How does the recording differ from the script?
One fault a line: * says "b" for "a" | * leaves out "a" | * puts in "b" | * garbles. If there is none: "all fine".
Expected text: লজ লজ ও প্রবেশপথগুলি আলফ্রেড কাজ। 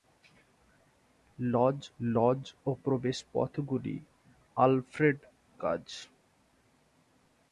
all fine